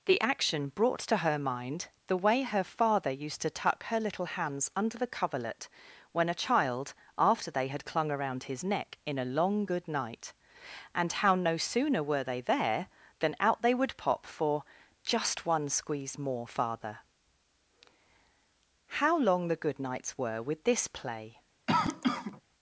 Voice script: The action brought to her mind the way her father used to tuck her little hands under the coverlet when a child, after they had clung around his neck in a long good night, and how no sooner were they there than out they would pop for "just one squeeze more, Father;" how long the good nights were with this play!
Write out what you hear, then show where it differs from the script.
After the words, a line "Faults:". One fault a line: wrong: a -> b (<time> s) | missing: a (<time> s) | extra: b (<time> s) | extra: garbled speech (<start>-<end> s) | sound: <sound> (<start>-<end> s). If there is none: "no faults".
The action brought to her mind the way her father used to tuck her little hands under the coverlet when a child, after they had clung around his neck in a long good night, and how no sooner were they there than out they would pop for "just one squeeze more, Father;" how long the good nights were with this play!
Faults:
sound: cough (21.7-22.4 s)